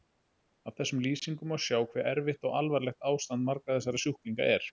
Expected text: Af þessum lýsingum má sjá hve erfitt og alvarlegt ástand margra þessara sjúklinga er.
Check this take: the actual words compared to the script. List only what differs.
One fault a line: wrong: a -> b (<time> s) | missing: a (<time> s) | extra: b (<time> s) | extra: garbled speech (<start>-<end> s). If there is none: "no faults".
no faults